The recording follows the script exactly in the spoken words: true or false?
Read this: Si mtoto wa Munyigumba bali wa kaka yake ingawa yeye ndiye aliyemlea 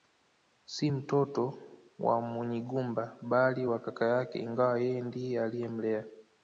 true